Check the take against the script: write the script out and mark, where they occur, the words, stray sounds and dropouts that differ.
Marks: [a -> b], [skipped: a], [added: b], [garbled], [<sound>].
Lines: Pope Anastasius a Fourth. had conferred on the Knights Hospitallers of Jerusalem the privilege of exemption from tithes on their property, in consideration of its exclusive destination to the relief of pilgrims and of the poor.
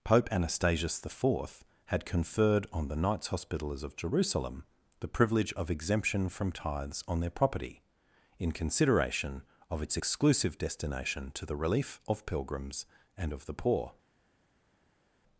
Pope Anastasius [a -> the] Fourth. had conferred on the Knights Hospitallers of Jerusalem the privilege of exemption from tithes on their property, in consideration of its exclusive destination to the relief of pilgrims and of the poor.